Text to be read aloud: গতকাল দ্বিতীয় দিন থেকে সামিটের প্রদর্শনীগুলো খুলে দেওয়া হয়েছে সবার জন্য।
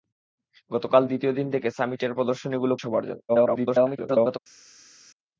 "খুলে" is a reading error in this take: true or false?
true